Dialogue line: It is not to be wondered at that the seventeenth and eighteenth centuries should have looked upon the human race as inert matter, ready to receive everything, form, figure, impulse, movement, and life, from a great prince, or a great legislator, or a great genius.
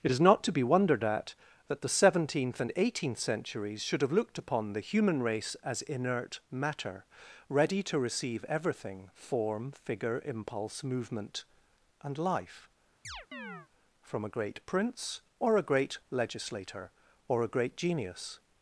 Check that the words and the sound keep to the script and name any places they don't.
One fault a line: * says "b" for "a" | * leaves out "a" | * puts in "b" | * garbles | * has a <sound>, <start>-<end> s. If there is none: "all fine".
* has a chirp, 13.0-13.7 s